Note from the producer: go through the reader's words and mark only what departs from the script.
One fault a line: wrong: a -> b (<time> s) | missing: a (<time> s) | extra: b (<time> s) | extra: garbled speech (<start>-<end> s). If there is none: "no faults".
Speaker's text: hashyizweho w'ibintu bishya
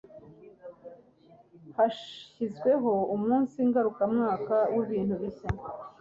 extra: umunsi ngarukamwaka (3.1 s)